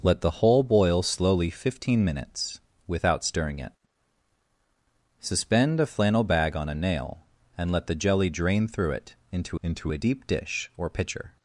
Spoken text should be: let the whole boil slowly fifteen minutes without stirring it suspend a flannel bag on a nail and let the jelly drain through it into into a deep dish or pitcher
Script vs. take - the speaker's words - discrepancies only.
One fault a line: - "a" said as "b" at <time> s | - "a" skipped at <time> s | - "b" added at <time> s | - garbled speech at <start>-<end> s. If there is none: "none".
none